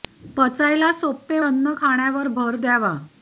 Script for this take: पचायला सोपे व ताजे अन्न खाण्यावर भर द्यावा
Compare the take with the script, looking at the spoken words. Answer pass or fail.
fail